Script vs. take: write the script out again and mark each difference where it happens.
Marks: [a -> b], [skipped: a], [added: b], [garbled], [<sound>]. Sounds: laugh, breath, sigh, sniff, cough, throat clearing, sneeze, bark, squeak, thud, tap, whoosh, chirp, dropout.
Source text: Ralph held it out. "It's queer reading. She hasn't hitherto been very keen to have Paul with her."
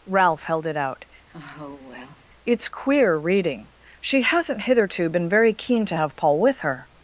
Ralph held it out. [sigh] "It's queer reading. She hasn't hitherto been very keen to have Paul with her."